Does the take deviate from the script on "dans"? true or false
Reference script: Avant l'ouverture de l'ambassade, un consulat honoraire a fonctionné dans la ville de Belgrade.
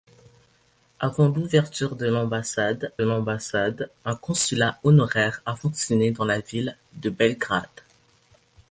false